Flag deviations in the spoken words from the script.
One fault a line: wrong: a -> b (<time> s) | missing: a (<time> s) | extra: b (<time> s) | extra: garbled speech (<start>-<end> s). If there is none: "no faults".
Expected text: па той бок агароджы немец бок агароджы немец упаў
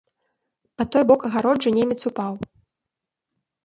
missing: бок агароджы немец (2.0 s)